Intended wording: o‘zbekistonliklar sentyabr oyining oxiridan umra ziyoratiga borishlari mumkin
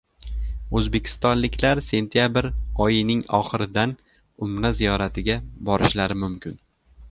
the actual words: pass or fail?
pass